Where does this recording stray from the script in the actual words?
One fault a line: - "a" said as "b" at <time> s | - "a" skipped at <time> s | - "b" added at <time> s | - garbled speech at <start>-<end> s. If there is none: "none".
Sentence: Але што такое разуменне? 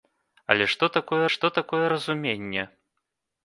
- "што такое" added at 1.3 s